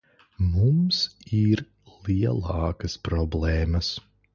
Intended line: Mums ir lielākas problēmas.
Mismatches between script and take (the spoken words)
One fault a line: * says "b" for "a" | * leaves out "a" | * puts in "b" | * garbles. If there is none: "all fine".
all fine